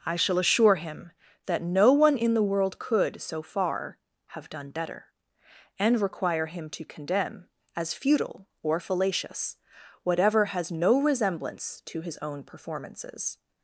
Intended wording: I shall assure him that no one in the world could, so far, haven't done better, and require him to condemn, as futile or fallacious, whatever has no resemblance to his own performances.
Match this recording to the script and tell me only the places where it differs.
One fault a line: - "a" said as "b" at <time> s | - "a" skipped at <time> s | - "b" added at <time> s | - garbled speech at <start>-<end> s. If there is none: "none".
- "haven't" said as "have" at 4.3 s